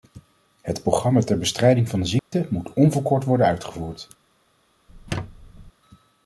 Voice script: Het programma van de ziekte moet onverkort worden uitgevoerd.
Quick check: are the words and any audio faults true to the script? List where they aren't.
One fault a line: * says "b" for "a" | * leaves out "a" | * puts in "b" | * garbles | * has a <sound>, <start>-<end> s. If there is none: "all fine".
* puts in "ter bestrijding"
* has a dropout, 2.2-2.3 s
* has a squeak, 4.9-5.7 s